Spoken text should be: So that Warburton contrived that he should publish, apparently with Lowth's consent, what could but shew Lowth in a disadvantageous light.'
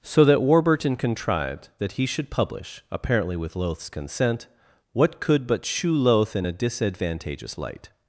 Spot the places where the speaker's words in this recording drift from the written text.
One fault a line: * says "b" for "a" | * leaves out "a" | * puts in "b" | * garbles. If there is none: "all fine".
all fine